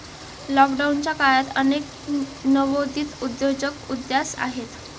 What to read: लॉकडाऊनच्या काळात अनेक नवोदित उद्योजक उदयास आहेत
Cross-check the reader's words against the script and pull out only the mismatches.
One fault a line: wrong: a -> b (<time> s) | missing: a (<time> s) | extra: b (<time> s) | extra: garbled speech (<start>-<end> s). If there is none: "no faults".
no faults